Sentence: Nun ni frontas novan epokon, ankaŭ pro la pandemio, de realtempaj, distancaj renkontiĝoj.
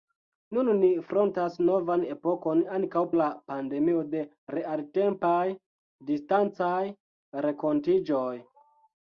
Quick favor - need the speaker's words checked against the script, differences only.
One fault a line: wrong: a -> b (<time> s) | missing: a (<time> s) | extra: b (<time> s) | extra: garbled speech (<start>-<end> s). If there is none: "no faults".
missing: pro (3.0 s)